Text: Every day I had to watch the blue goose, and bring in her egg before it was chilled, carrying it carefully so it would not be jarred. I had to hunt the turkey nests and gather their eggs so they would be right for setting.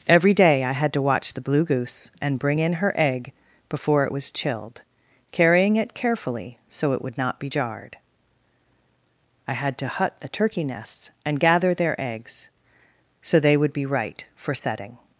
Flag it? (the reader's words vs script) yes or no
yes